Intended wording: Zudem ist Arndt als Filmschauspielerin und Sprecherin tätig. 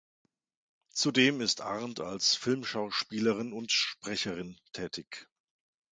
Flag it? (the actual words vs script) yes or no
no